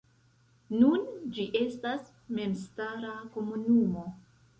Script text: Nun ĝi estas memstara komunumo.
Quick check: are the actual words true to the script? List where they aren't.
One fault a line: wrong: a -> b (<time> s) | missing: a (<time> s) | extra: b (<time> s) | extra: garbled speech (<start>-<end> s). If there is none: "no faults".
no faults